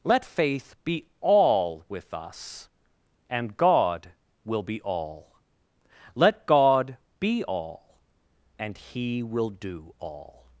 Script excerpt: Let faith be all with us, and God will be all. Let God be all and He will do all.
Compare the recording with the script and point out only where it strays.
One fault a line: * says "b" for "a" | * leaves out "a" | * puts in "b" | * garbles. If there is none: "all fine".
all fine